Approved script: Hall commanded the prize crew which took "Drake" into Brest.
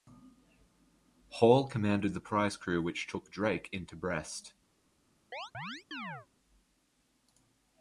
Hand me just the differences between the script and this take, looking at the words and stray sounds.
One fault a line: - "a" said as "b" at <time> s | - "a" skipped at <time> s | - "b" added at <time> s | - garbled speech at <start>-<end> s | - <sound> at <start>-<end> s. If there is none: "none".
- chirp at 5.3-6.3 s